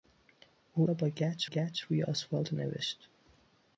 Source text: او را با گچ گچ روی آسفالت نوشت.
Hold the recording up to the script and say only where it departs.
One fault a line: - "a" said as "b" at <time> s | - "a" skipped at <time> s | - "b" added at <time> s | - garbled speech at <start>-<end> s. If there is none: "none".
none